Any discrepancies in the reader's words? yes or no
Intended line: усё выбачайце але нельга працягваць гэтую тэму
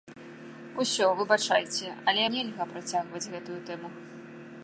no